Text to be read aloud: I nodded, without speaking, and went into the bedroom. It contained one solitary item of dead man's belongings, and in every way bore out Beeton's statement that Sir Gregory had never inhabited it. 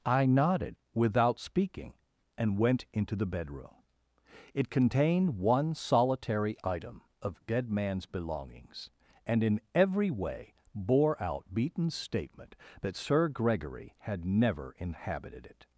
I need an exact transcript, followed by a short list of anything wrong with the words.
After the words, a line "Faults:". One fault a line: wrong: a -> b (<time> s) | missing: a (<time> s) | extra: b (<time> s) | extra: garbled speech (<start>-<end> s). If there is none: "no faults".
I nodded, without speaking, and went into the bedroom. It contained one solitary item of dead man's belongings, and in every way bore out Beeton's statement that Sir Gregory had never inhabited it.
Faults:
no faults